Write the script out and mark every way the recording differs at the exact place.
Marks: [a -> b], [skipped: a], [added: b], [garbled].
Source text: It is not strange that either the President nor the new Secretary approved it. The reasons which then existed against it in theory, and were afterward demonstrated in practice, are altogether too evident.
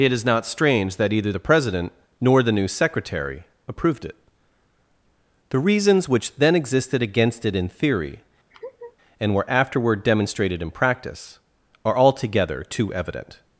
It is not strange that either the President nor the new Secretary approved it. The reasons which then existed against it in theory, and were afterward demonstrated in practice, are altogether too evident.